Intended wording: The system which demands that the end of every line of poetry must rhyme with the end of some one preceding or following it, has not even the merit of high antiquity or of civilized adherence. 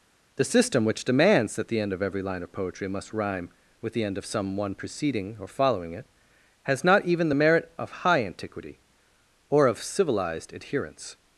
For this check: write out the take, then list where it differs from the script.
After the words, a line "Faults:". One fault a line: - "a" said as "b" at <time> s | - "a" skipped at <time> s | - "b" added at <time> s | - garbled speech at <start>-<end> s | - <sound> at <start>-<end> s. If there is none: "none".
The system which demands that the end of every line of poetry must rhyme with the end of some one preceding or following it, has not even the merit of high antiquity or of civilized adherence.
Faults:
none